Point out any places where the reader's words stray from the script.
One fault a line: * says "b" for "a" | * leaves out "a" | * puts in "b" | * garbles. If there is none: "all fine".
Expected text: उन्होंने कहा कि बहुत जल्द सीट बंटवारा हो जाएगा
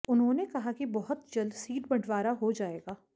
all fine